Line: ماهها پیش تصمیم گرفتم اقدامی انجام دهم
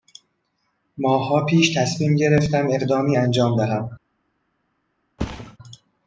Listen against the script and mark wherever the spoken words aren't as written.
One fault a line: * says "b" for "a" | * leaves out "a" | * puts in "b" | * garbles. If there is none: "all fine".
all fine